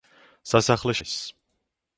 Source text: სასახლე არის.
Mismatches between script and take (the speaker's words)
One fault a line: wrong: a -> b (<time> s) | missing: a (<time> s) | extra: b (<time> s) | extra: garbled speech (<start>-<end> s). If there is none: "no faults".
no faults